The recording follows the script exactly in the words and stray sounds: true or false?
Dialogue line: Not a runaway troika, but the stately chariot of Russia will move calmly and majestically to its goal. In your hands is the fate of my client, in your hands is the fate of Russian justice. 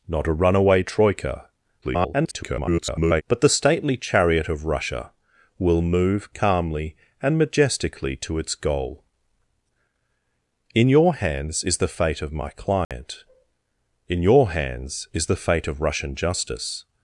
false